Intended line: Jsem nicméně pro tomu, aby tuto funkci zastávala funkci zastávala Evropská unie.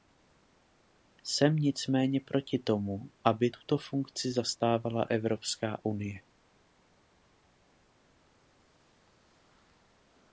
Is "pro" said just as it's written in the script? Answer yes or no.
no